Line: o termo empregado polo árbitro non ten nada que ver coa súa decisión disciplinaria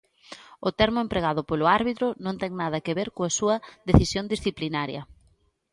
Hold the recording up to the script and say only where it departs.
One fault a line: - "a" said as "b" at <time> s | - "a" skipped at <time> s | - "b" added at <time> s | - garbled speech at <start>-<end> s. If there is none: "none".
none